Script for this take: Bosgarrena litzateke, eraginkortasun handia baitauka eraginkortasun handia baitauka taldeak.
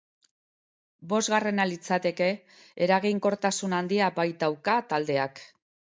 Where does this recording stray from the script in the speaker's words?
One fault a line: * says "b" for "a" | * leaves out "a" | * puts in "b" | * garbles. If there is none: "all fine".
* leaves out "eraginkortasun handia baitauka"